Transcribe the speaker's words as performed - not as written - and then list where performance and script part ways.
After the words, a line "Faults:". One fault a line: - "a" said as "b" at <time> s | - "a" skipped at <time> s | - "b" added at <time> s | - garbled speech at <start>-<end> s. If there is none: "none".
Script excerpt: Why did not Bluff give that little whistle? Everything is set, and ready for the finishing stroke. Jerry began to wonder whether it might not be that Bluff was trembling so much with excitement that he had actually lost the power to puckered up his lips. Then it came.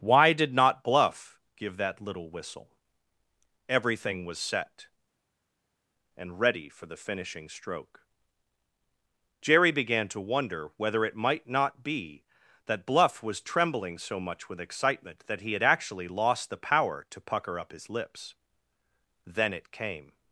Why did not Bluff give that little whistle? Everything was set, and ready for the finishing stroke. Jerry began to wonder whether it might not be that Bluff was trembling so much with excitement that he had actually lost the power to pucker up his lips. Then it came.
Faults:
- "is" said as "was" at 4.2 s
- "puckered" said as "pucker" at 17.2 s